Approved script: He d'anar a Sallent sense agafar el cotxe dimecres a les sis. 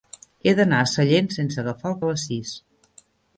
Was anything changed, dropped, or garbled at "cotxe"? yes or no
yes